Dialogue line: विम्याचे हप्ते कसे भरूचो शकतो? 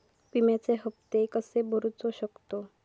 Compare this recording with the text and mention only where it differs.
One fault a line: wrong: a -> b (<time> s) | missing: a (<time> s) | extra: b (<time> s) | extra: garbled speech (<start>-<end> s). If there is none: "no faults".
no faults